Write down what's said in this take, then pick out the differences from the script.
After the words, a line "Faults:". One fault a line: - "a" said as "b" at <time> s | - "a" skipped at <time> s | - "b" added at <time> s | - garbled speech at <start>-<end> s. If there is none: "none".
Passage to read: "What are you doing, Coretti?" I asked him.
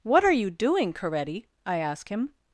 "What are you doing, Coretti?" I ask him.
Faults:
- "asked" said as "ask" at 1.8 s